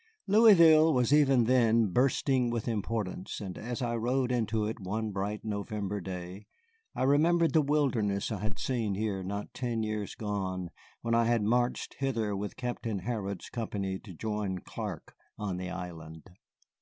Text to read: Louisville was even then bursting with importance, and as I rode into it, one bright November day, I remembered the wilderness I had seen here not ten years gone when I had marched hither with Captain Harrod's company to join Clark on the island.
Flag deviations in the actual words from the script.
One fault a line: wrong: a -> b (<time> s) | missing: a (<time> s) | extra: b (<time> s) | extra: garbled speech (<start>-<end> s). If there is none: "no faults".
no faults